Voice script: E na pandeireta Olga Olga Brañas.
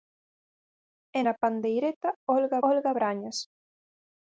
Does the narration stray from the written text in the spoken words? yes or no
no